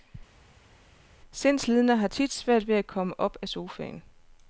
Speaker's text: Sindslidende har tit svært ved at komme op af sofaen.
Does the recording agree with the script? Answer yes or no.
yes